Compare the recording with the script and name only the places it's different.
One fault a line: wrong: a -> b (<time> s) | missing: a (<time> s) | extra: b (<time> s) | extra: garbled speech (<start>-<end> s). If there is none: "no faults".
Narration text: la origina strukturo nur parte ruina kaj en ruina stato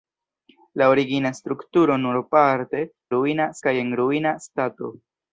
no faults